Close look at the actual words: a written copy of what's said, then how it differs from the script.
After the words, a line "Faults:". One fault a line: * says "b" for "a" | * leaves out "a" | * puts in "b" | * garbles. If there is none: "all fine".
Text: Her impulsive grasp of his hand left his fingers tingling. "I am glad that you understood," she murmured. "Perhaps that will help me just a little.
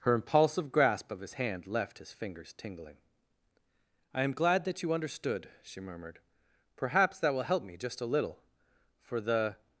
Her impulsive grasp of his hand left his fingers tingling. "I am glad that you understood," she murmured. "Perhaps that will help me just a little. For the
Faults:
* puts in "For the"